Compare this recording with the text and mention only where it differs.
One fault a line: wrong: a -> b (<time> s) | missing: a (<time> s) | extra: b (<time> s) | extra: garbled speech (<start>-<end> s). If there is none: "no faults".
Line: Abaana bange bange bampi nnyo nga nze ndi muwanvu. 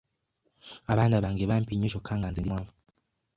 missing: bange (1.4 s)
extra: kyokka (1.9 s)